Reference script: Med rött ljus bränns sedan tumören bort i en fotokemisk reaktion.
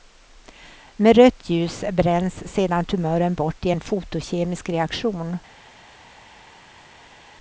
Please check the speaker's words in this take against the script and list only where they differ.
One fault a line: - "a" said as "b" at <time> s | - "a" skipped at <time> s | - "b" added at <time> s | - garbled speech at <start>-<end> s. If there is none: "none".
none